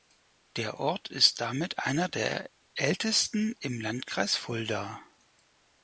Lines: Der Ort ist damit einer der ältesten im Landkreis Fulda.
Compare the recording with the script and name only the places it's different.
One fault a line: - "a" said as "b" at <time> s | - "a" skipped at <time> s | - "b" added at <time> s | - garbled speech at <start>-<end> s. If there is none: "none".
none